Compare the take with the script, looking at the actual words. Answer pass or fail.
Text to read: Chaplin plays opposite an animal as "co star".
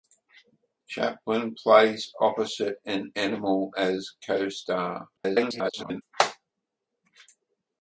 fail